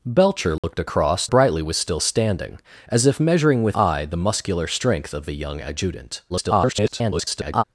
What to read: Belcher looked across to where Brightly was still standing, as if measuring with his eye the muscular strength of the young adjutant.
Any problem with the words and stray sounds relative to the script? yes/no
yes